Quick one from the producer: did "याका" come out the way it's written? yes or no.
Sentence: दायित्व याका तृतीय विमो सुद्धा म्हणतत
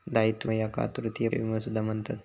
yes